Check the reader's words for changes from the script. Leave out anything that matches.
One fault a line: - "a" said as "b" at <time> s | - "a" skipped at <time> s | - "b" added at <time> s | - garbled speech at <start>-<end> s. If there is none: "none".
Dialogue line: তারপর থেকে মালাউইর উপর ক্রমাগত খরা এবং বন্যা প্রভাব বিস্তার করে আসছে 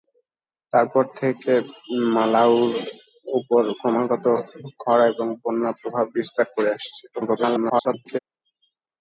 - garbled speech at 7.1-8.2 s